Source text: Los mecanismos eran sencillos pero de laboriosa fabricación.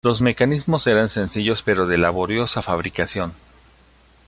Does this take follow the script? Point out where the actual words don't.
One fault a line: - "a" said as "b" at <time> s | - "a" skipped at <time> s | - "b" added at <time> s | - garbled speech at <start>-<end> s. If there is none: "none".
none